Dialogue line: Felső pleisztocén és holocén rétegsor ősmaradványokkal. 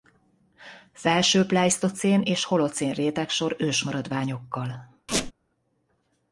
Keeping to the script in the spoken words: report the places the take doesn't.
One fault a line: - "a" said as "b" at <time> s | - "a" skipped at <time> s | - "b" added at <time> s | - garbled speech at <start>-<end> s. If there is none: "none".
none